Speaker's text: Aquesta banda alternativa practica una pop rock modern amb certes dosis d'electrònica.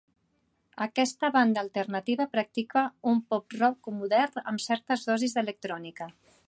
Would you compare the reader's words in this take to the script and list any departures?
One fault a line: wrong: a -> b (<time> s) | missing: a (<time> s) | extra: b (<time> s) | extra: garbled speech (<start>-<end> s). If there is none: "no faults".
wrong: una -> un (3.1 s)